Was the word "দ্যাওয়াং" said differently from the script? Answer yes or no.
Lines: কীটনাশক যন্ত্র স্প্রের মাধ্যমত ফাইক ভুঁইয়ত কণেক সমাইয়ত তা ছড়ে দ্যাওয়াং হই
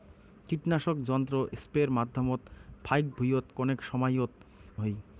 yes